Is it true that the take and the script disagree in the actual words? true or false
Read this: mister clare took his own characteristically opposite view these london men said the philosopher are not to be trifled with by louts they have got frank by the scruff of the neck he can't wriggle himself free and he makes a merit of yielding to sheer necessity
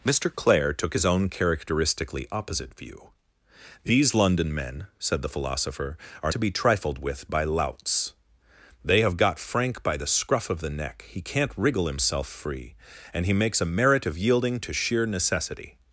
true